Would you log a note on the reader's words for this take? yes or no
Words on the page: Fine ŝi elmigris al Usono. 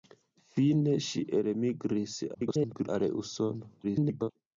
yes